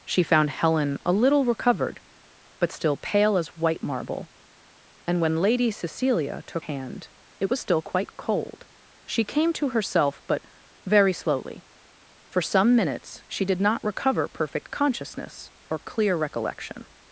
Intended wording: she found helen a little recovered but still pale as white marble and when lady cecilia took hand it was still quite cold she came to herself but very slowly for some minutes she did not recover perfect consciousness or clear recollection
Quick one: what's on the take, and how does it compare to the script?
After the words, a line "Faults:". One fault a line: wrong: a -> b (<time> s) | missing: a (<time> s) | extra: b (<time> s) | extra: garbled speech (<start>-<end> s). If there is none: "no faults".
she found helen a little recovered but still pale as white marble and when lady cecilia took hand it was still quite cold she came to herself but very slowly for some minutes she did not recover perfect consciousness or clear recollection
Faults:
no faults